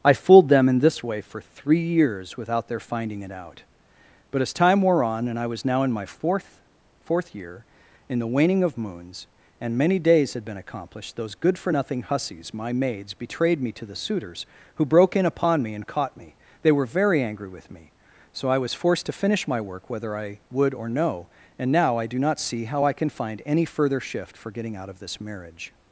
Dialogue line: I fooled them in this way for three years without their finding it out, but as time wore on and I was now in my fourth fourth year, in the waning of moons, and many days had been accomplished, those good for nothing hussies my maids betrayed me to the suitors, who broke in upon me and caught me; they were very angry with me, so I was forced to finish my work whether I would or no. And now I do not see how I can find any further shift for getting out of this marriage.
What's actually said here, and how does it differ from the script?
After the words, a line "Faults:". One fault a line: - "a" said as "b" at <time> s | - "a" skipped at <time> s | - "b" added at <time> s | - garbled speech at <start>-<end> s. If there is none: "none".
I fooled them in this way for three years without their finding it out, but as time wore on and I was now in my fourth fourth year, in the waning of moons, and many days had been accomplished, those good for nothing hussies my maids betrayed me to the suitors, who broke in upon me and caught me; they were very angry with me, so I was forced to finish my work whether I would or no. And now I do not see how I can find any further shift for getting out of this marriage.
Faults:
none